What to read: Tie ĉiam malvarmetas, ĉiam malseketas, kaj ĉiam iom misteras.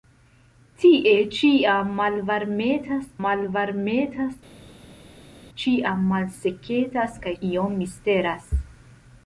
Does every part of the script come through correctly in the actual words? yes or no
no